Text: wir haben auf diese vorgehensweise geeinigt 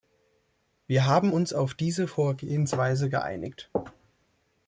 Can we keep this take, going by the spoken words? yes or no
no